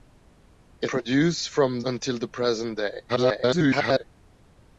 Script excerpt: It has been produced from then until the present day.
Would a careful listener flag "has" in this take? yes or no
yes